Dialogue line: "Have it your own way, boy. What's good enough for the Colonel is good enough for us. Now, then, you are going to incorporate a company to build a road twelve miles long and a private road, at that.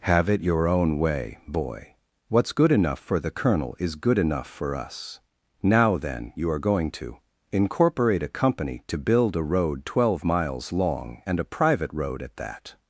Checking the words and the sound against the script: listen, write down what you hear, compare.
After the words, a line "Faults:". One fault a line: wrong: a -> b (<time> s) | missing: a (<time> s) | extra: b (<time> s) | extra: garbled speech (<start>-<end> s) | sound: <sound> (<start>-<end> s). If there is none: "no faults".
"Have it your own way, boy. What's good enough for the Colonel is good enough for us. Now, then, you are going to incorporate a company to build a road twelve miles long and a private road, at that.
Faults:
no faults